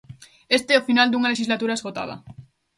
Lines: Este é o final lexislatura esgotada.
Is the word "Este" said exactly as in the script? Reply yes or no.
yes